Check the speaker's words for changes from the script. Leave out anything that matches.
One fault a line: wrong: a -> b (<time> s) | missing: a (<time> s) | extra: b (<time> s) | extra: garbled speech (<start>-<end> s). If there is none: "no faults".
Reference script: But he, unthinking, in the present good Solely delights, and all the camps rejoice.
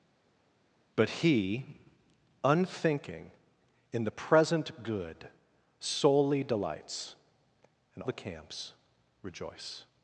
missing: all (8.0 s)